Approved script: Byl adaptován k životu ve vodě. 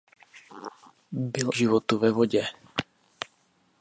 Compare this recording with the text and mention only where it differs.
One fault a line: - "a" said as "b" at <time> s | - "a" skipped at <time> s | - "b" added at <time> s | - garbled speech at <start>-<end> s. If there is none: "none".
- "adaptován" skipped at 1.5 s